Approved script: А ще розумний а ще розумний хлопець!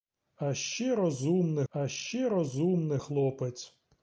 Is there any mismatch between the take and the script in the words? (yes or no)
no